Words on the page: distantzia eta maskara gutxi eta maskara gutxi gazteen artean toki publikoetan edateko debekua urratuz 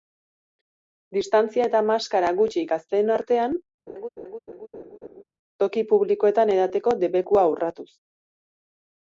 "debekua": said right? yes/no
yes